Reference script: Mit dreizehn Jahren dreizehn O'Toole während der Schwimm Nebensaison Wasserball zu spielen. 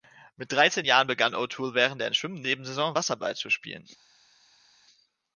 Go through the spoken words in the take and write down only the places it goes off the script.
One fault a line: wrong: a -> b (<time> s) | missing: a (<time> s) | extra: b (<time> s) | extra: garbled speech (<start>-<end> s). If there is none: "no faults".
wrong: dreizehn -> begann (1.1 s)